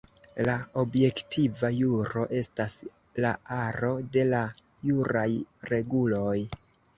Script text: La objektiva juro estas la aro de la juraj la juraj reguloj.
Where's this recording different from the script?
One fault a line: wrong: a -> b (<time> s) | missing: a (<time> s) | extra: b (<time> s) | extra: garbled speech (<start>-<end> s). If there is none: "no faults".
missing: la juraj (5.3 s)